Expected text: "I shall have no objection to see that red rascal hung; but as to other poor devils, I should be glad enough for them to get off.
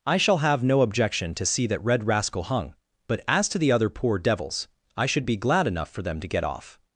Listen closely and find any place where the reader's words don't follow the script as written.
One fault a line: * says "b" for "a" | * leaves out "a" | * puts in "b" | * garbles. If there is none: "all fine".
* puts in "the"